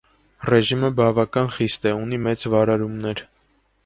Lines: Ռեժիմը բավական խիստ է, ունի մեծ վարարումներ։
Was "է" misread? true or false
false